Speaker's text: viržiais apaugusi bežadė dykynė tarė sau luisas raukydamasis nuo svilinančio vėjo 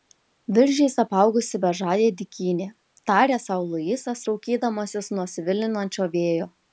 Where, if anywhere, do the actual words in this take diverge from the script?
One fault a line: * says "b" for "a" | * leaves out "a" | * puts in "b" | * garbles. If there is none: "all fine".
all fine